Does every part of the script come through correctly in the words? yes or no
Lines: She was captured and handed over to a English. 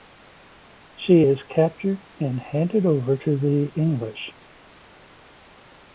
no